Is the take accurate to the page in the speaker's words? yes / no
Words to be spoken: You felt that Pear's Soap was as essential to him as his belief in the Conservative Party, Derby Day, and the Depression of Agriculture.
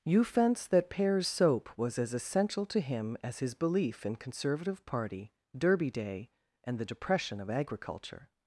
no